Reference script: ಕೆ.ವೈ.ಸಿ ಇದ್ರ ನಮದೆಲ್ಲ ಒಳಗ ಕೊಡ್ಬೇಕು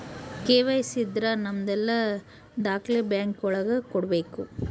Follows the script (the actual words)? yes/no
no